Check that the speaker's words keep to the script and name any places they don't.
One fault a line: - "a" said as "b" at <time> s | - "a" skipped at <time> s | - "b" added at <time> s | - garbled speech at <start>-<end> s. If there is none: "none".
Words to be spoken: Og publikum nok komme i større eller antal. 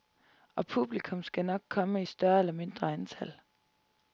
- "skal" added at 1.2 s
- "mindre" added at 2.5 s